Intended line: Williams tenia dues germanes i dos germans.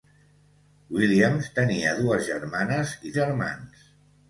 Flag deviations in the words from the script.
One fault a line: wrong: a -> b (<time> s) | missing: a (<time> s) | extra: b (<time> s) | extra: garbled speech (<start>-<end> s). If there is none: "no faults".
missing: dos (3.1 s)